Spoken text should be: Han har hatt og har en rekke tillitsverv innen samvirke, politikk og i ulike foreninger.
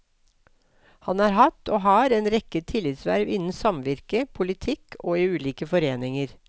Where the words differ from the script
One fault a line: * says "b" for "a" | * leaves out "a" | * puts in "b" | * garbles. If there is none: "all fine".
all fine